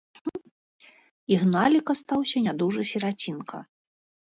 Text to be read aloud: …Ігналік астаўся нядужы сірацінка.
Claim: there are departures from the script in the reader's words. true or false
false